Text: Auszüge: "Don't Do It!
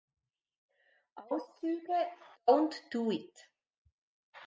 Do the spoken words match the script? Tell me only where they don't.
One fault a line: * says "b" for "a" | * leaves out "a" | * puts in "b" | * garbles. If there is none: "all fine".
all fine